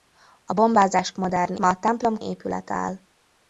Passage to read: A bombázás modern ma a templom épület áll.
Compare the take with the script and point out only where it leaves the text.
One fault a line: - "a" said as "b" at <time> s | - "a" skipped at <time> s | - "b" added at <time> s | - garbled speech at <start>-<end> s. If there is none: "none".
none